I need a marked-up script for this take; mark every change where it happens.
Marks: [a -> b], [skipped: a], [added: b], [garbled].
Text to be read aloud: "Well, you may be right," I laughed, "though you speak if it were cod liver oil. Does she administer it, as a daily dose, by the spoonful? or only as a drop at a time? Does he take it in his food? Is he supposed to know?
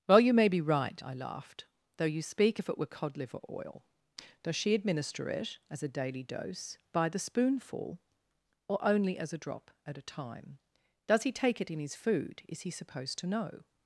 "Well, you may be right," I laughed, "though you speak if it were cod liver oil. Does she administer it, as a daily dose, by the spoonful? or only as a drop at a time? Does he take it in his food? Is he supposed to know?